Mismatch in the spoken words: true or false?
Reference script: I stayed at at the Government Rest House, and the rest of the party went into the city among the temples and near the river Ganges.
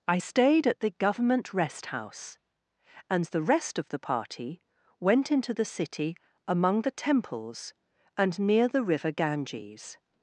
true